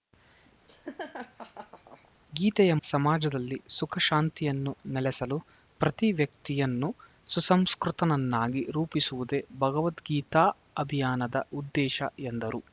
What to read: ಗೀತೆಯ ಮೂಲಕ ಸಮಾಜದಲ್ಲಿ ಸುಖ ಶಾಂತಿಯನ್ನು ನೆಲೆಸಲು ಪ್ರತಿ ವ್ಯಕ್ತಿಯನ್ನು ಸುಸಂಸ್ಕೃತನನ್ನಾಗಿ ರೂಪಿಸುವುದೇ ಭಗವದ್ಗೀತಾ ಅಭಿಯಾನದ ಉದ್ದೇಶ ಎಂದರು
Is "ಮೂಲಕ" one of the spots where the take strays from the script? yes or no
yes